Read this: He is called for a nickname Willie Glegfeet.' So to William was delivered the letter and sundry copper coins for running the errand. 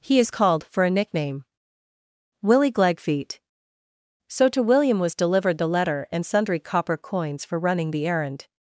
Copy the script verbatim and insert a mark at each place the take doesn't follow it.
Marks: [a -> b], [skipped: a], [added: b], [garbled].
He is called for a nickname Willie Glegfeet.' So to William was delivered the letter and sundry copper coins for running the errand.